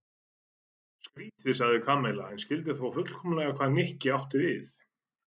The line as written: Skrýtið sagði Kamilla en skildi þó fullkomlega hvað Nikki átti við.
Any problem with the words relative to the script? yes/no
no